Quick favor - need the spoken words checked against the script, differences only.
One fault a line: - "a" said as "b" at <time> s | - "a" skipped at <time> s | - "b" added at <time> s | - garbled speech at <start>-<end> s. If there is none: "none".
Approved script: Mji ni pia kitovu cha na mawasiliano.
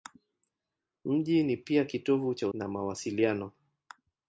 none